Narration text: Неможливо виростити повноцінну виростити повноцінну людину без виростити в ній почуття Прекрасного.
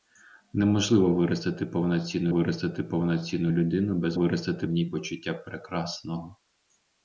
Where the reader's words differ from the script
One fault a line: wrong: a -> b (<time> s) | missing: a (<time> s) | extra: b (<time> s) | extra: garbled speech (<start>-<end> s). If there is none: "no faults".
no faults